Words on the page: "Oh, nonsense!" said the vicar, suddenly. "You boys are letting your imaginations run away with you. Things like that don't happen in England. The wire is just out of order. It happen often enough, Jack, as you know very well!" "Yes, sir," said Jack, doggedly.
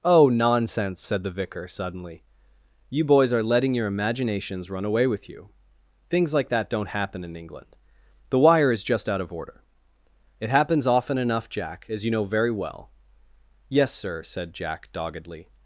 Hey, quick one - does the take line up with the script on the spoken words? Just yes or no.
no